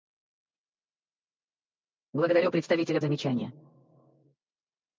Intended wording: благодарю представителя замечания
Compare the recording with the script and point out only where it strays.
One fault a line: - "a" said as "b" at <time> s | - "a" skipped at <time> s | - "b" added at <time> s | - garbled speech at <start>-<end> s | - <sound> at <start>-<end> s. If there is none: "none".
none